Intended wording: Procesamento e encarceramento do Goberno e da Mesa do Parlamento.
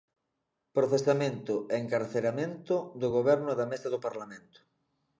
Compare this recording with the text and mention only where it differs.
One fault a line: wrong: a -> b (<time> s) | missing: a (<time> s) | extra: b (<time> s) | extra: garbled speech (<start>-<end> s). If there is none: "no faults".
no faults